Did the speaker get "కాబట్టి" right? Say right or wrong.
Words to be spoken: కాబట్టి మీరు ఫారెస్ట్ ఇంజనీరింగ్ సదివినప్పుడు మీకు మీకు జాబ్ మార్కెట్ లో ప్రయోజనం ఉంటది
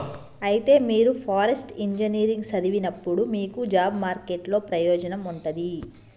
wrong